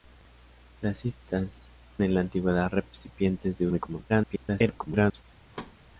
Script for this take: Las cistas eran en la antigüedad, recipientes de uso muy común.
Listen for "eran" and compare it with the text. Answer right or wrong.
wrong